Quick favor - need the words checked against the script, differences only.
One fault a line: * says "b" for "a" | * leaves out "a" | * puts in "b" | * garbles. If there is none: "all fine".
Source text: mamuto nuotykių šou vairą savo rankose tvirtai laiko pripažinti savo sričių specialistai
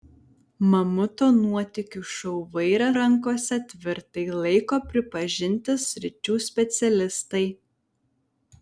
* leaves out "savo"
* leaves out "savo"